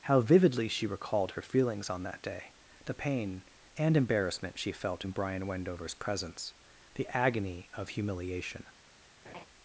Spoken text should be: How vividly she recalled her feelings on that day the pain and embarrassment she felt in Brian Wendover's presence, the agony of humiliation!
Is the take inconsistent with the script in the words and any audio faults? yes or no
yes